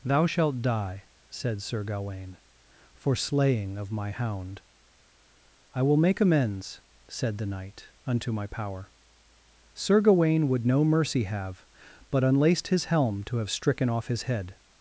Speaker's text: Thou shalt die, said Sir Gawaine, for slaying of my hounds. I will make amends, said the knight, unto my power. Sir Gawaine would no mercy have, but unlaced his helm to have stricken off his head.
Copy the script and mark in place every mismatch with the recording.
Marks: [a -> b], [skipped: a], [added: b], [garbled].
Thou shalt die, said Sir Gawaine, for slaying of my [hounds. -> hound] I will make amends, said the knight, unto my power. Sir Gawaine would no mercy have, but unlaced his helm to have stricken off his head.